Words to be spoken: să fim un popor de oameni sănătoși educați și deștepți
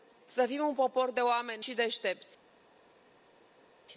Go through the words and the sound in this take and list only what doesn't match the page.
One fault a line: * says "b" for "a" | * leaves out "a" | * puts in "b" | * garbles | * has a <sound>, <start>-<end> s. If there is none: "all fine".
* leaves out "sănătoși educați"